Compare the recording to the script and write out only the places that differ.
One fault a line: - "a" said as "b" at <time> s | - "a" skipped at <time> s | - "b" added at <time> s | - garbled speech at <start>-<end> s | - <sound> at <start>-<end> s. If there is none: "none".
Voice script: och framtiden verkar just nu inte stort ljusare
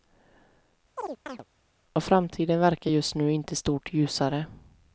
- chirp at 1.0-1.4 s